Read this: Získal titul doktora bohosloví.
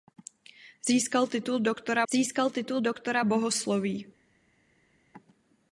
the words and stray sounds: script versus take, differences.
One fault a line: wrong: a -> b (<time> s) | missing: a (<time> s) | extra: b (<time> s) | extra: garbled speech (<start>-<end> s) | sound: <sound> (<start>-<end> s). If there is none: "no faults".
extra: získal titul doktora (2.1 s)